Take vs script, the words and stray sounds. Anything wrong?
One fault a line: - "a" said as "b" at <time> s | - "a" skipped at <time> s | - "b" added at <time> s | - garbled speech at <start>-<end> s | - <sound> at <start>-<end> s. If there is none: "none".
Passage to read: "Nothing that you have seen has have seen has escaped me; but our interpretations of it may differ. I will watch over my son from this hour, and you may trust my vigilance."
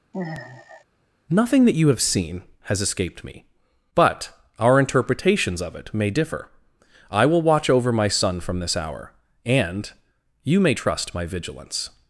- sigh at 0.1-0.8 s
- "have seen has" skipped at 2.8 s